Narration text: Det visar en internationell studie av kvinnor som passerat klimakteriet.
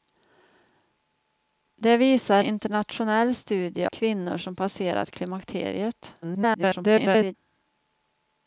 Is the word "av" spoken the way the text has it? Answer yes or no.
no